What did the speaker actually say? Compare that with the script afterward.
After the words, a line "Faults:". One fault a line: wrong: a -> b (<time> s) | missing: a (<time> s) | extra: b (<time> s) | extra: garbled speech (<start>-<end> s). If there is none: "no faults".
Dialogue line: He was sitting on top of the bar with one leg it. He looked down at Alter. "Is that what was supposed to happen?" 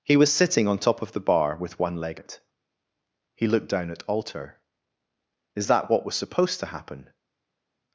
He was sitting on top of the bar with one leg it. He looked down at Alter. "Is that what was supposed to happen?"
Faults:
no faults